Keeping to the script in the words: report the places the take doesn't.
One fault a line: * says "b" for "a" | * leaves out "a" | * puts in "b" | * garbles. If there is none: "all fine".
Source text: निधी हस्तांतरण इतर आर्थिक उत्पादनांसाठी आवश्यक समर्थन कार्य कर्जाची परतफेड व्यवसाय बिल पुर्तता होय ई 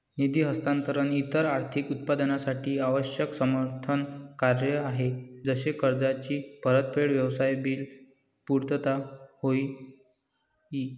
* puts in "आहे जसे"